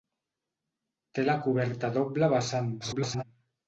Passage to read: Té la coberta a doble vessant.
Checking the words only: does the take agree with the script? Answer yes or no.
no